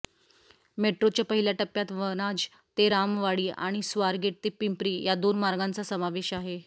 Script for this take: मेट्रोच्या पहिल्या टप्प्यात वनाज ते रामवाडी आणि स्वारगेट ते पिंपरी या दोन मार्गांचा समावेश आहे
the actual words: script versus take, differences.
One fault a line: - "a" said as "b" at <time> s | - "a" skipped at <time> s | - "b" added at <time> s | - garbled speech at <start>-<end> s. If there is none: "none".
none